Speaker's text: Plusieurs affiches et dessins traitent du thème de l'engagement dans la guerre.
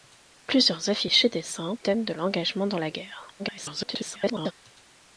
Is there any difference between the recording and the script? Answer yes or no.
yes